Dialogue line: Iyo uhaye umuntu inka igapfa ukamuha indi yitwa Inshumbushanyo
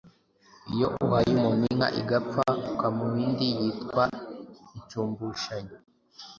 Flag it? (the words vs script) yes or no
no